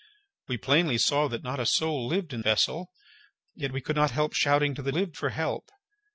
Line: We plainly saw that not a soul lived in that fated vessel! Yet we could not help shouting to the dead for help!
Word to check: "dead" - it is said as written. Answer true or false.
false